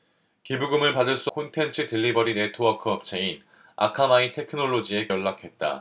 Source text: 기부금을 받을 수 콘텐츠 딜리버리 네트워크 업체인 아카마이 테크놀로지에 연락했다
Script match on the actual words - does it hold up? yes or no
yes